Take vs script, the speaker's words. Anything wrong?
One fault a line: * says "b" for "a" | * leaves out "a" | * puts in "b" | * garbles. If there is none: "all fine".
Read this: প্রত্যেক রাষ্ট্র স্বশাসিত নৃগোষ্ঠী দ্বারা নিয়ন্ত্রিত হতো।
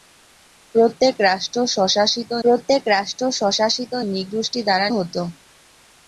* puts in "প্রত্যেক রাষ্ট্র স্বশাসিত"
* leaves out "নিয়ন্ত্রিত"